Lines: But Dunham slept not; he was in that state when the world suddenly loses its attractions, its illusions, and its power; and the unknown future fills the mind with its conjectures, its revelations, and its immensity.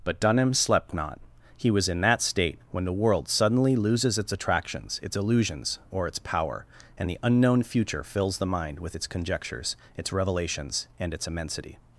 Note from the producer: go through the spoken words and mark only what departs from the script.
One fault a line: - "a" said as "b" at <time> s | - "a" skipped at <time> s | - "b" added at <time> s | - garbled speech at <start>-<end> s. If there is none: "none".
- "and" said as "or" at 5.9 s